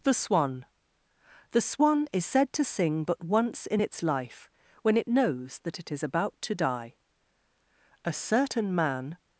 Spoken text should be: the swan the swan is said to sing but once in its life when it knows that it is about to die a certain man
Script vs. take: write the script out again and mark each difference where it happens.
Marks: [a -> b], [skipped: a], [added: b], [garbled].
the swan the swan is said to sing but once in its life when it knows that it is about to die a certain man